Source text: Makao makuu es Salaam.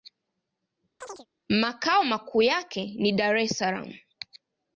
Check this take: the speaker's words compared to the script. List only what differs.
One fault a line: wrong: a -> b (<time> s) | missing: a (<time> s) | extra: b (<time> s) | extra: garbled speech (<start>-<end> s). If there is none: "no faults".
extra: yake ni Dar (2.4 s)